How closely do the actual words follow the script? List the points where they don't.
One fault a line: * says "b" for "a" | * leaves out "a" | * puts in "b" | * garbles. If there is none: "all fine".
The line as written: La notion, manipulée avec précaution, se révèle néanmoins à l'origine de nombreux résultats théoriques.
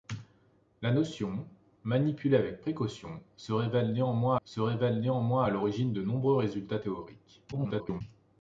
* puts in "se révèle néanmoins"
* garbles